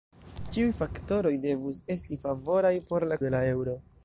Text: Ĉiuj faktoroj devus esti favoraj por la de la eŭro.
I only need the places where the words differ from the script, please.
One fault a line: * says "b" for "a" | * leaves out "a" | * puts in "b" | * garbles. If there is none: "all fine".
all fine